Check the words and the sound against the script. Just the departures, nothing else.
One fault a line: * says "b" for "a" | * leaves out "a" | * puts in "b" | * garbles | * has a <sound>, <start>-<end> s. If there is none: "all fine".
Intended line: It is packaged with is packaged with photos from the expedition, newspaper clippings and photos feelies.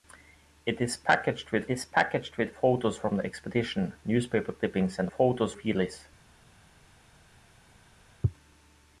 all fine